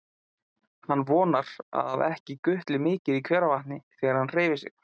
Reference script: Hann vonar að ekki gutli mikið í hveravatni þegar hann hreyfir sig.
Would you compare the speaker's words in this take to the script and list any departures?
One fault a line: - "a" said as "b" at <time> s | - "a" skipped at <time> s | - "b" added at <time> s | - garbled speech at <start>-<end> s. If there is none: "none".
none